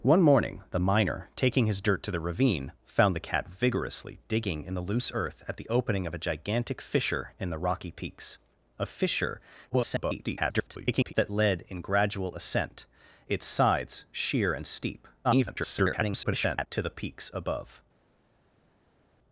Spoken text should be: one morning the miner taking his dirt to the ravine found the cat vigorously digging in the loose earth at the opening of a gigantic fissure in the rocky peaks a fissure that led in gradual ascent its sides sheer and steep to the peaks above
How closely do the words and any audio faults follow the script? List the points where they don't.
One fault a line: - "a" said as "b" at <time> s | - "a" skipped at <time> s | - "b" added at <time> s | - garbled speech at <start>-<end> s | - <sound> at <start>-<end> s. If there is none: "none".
- garbled speech at 9.7-11.1 s
- garbled speech at 15.2-16.7 s